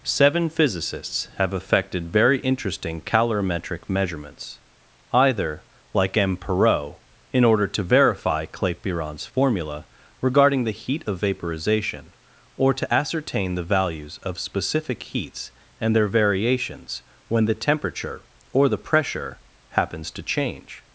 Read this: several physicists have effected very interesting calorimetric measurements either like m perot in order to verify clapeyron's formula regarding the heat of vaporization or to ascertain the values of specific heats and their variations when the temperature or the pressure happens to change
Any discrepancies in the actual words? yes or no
yes